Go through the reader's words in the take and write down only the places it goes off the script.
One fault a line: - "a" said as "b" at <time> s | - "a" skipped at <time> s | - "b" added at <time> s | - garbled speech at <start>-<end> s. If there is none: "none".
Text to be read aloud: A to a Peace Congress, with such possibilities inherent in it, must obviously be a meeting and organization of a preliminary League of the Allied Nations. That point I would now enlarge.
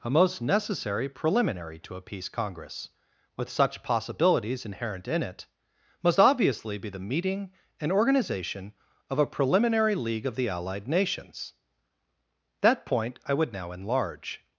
- "most necessary preliminary" added at 0.1 s
- "a" said as "the" at 6.9 s